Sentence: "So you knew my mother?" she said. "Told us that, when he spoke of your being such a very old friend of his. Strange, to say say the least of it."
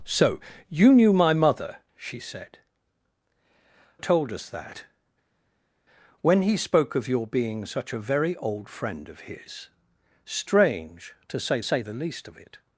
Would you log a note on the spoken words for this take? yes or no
no